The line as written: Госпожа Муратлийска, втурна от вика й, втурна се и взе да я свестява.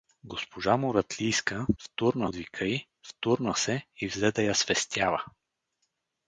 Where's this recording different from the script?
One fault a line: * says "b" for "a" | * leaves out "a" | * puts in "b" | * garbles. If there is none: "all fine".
all fine